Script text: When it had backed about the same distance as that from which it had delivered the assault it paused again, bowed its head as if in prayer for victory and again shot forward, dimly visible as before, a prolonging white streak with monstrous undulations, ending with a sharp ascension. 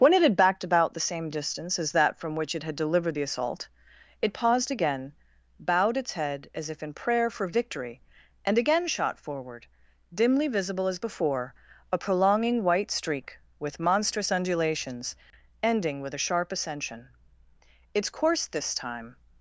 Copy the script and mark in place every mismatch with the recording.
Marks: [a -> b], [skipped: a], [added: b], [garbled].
When it had backed about the same distance as that from which it had delivered the assault it paused again, bowed its head as if in prayer for victory and again shot forward, dimly visible as before, a prolonging white streak with monstrous undulations, ending with a sharp ascension. [added: Its course this time]